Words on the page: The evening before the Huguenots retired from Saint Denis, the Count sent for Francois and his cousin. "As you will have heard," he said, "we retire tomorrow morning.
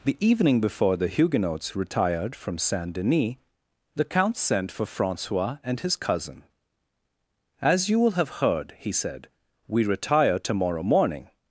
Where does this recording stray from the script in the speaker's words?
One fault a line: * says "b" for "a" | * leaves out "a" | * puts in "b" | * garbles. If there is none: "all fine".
all fine